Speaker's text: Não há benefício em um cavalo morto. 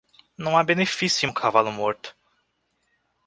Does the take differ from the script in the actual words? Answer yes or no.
no